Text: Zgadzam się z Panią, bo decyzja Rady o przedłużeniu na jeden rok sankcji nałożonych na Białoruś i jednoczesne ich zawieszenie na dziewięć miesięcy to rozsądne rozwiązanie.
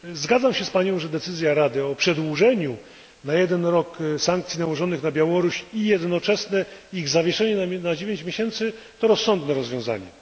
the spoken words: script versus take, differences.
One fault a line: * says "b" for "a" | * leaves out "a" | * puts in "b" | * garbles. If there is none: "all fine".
* says "że" for "bo"